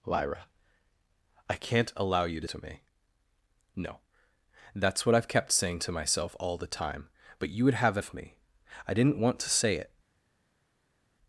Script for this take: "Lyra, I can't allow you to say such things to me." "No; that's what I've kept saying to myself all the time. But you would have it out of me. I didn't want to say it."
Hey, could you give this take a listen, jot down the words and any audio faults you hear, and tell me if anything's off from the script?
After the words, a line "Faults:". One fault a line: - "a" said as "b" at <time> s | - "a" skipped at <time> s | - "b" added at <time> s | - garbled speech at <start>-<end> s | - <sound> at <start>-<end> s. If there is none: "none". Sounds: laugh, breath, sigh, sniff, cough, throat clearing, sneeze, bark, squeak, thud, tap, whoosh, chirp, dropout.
"Lyra, I can't allow you to to me." "No; that's what I've kept saying to myself all the time. But you would have it of me. I didn't want to say it."
Faults:
- "say such things" skipped at 2.5 s
- "out" skipped at 8.0 s